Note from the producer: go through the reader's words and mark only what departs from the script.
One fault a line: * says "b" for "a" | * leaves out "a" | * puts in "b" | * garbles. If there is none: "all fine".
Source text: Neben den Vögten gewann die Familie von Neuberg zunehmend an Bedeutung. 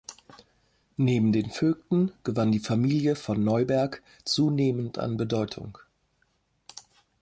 all fine